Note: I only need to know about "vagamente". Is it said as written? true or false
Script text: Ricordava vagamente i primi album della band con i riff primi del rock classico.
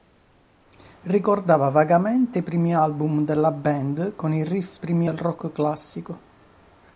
true